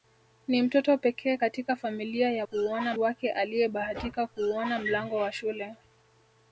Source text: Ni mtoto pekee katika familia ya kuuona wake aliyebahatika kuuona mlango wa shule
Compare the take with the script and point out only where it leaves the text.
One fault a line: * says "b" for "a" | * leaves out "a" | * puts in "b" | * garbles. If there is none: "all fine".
all fine